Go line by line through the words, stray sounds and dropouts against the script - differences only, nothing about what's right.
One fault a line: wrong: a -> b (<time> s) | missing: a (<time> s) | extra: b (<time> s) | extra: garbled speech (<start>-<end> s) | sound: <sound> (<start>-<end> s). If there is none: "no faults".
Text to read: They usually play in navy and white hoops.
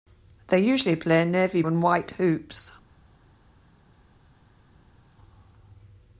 no faults